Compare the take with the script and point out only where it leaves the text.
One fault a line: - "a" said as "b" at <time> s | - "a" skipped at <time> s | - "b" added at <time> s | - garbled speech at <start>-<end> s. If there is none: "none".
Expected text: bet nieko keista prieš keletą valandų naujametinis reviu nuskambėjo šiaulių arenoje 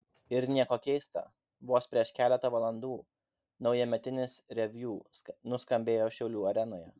- "bet" said as "ir" at 0.3 s
- "vos" added at 1.7 s